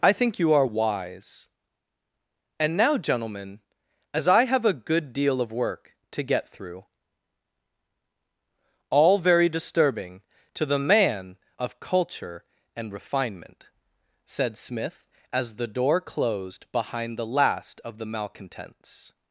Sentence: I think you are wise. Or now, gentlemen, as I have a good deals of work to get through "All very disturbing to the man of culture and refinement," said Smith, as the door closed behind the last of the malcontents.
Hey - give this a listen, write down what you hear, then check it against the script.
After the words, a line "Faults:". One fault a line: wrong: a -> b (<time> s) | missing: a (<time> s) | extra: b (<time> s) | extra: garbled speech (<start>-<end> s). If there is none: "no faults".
I think you are wise. And now, gentlemen, as I have a good deal of work to get through "All very disturbing to the man of culture and refinement," said Smith, as the door closed behind the last of the malcontents.
Faults:
wrong: Or -> And (2.6 s)
wrong: deals -> deal (5.1 s)